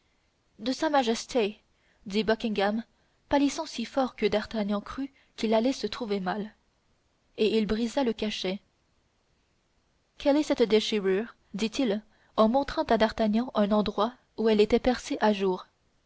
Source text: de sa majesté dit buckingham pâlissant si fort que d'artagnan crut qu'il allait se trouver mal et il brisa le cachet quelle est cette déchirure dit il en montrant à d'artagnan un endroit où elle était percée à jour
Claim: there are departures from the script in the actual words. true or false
false